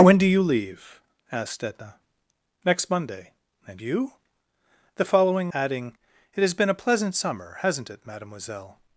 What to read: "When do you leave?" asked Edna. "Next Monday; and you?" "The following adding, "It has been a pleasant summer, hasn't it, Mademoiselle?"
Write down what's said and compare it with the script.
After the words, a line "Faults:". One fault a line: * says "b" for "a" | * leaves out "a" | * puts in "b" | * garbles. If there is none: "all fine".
"When do you leave?" asked Edna. "Next Monday; and you?" "The following adding, "It has been a pleasant summer, hasn't it, Mademoiselle?"
Faults:
all fine